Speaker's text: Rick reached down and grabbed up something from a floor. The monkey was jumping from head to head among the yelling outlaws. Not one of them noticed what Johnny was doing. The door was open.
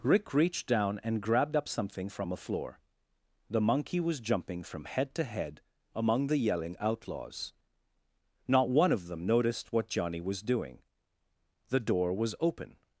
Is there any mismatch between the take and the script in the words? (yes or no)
no